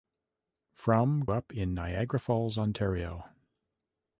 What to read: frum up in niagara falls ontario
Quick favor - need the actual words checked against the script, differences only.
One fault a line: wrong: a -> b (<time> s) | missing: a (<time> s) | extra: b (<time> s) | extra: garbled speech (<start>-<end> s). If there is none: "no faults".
no faults